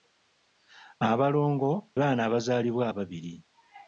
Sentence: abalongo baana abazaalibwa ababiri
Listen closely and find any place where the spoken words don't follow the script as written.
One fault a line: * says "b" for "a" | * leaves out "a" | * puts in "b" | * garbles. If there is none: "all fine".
all fine